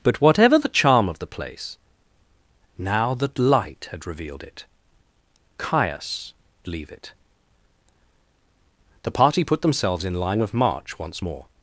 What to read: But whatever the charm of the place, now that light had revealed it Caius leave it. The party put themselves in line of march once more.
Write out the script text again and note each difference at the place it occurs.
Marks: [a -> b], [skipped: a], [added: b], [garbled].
But whatever the charm of the place, now that light had revealed it Caius leave it. The party put themselves in line of march once more.